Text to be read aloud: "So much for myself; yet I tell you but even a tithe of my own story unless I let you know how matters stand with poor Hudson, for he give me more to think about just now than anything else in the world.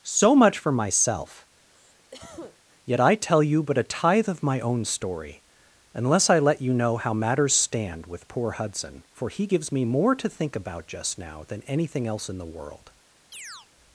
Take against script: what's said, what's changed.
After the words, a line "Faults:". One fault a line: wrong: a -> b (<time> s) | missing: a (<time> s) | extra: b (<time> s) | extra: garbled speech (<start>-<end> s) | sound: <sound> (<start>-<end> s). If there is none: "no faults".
"So much for myself; yet I tell you but a tithe of my own story unless I let you know how matters stand with poor Hudson, for he gives me more to think about just now than anything else in the world.
Faults:
sound: cough (1.7-2.6 s)
missing: even (3.8 s)
wrong: give -> gives (9.5 s)
sound: chirp (13.3-13.7 s)